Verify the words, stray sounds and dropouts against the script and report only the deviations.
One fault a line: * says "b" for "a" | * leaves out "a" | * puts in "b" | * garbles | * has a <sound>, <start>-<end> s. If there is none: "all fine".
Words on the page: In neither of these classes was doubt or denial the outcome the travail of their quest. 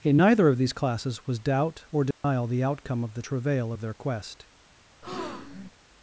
* has a dropout, 2.1-2.2 s
* puts in "of"
* has a breath, 5.0-5.7 s